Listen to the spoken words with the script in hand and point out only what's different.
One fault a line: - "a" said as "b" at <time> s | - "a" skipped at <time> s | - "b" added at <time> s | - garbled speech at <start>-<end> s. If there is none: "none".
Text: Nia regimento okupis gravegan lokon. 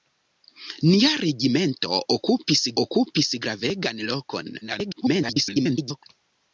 - "okupis" added at 2.8 s
- garbled speech at 4.6-6.0 s